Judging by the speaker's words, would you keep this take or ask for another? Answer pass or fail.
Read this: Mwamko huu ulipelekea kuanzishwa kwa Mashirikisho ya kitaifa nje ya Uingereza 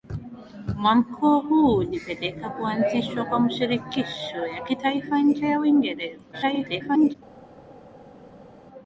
fail